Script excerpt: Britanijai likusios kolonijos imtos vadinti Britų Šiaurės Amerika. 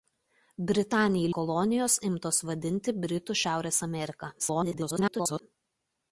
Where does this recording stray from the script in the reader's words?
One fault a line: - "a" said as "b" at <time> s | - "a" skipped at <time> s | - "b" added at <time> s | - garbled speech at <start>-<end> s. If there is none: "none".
- "likusios" skipped at 1.3 s
- garbled speech at 4.4-5.4 s